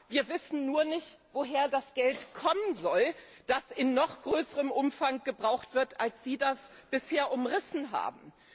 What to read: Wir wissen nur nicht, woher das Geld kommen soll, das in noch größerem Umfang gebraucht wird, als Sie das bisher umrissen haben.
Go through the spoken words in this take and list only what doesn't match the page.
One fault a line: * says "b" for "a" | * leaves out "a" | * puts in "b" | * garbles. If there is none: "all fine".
all fine